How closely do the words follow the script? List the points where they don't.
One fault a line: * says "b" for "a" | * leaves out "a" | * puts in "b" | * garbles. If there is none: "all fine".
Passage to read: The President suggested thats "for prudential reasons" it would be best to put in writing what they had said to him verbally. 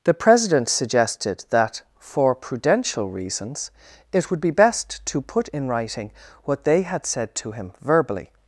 * says "that" for "thats"